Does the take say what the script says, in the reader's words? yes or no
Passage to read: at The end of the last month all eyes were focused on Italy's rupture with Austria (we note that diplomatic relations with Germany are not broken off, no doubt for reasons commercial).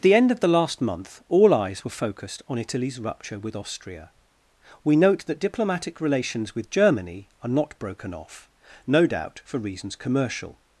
yes